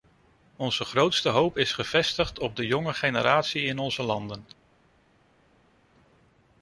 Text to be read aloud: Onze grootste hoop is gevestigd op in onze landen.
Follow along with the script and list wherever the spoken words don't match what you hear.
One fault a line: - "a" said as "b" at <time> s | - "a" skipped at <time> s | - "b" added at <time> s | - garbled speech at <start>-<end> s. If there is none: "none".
- "de jonge generatie" added at 2.6 s